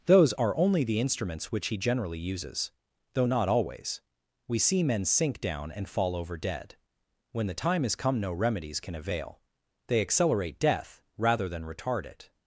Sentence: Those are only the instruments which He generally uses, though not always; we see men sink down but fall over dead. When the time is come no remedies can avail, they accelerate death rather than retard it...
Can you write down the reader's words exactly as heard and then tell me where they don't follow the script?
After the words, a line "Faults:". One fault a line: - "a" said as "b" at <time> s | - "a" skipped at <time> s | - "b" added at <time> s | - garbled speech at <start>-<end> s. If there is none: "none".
Those are only the instruments which He generally uses, though not always; we see men sink down and fall over dead. When the time is come no remedies can avail, they accelerate death rather than retard it...
Faults:
- "but" said as "and" at 5.7 s